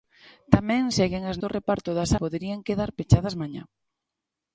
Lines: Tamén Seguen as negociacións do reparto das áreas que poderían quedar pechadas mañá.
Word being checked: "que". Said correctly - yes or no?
no